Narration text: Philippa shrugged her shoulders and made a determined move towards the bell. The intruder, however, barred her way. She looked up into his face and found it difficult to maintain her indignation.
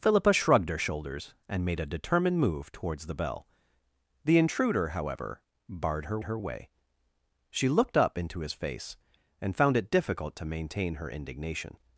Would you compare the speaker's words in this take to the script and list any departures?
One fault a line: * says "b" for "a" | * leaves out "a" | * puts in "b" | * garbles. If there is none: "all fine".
* puts in "her"